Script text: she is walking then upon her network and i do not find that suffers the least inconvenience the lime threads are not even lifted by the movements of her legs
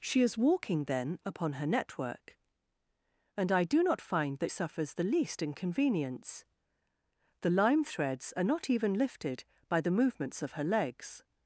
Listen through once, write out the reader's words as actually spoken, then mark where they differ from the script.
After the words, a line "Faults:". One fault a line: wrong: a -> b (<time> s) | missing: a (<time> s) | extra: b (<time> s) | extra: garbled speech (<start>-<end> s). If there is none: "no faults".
she is walking then upon her network and i do not find that suffers the least inconvenience the lime threads are not even lifted by the movements of her legs
Faults:
no faults